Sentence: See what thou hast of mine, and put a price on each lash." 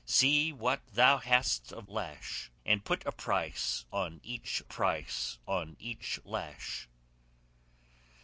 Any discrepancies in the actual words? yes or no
yes